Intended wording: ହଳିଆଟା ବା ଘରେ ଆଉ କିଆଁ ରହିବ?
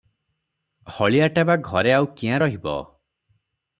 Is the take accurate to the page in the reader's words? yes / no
yes